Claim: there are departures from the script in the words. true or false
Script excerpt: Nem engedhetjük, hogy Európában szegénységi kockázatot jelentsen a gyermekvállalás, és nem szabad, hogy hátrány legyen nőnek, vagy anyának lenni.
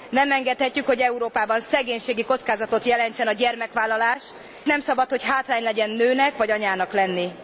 true